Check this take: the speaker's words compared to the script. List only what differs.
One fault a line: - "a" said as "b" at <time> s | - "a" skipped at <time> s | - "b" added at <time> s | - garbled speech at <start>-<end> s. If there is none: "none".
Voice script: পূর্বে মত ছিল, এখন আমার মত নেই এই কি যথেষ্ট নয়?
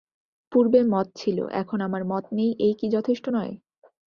none